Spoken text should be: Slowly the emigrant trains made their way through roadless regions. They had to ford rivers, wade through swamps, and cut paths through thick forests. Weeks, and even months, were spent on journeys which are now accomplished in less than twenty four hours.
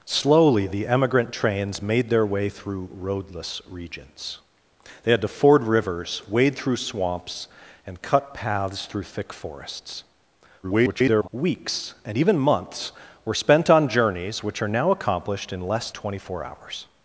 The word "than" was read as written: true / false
false